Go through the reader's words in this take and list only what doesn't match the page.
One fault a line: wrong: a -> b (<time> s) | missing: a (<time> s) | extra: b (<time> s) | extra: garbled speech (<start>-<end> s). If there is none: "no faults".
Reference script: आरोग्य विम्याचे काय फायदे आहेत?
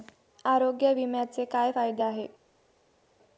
no faults